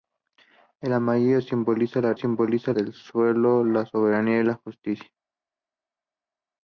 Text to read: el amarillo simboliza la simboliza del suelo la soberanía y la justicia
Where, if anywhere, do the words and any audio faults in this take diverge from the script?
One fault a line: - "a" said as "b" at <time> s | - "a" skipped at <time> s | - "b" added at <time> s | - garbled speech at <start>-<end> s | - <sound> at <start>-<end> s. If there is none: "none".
none